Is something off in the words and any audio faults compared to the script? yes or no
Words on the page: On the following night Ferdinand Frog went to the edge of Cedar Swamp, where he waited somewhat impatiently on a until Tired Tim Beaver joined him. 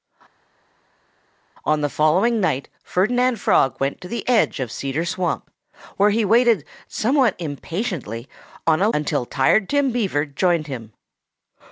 no